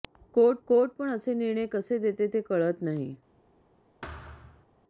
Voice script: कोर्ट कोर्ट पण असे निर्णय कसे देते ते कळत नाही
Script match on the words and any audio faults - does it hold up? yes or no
no